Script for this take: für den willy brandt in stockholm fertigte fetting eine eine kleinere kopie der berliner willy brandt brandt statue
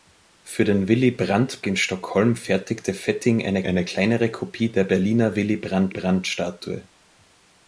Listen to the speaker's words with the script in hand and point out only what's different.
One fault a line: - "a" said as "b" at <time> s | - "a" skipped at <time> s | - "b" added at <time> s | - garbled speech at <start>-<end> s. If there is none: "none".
none